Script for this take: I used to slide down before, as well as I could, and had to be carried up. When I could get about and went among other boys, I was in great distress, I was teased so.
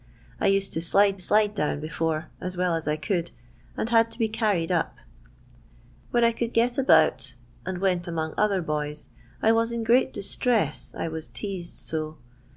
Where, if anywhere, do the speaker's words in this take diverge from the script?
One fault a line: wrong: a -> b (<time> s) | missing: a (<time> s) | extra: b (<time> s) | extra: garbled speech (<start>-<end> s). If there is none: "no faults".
extra: slide (1.2 s)